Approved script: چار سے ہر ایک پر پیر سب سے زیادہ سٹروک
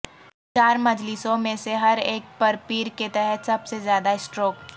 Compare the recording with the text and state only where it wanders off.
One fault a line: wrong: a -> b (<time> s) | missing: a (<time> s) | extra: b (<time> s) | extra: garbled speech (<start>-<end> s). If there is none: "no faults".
extra: مجلسوں میں (0.8 s)
extra: کے تحت (3.0 s)